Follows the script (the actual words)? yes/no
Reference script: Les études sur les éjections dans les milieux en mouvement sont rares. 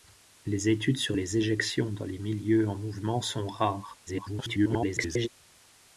no